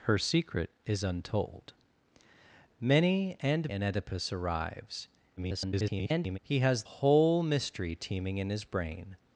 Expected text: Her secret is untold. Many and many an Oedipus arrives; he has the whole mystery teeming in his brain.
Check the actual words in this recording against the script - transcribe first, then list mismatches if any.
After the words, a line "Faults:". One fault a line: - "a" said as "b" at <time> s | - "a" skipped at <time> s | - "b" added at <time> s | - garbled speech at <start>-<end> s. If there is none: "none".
Her secret is untold. Many and an Oedipus arrives; [garbled] he has whole mystery teeming in his brain.
Faults:
- "many" skipped at 3.7 s
- garbled speech at 5.4-6.4 s
- "the" skipped at 6.8 s